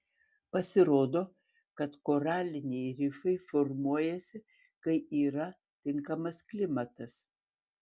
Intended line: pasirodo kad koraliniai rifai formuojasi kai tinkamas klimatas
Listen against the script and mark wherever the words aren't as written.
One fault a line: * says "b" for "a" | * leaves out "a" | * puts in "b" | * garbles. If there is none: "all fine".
* puts in "yra"